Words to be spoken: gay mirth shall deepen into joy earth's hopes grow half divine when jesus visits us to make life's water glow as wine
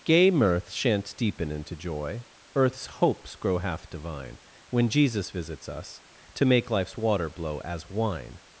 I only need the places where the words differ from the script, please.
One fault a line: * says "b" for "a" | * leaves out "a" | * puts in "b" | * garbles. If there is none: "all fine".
* says "shan't" for "shall"
* says "blow" for "glow"